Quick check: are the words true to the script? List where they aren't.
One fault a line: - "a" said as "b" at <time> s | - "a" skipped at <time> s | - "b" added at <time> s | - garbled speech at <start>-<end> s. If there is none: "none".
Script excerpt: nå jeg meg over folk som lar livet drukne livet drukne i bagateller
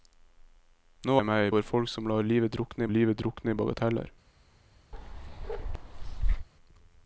none